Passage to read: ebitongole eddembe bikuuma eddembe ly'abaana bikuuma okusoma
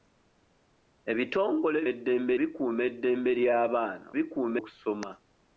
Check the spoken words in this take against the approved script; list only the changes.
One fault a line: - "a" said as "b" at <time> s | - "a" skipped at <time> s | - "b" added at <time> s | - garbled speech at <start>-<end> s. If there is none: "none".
none